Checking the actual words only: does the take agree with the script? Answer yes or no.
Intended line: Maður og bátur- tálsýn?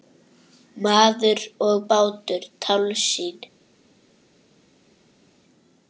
yes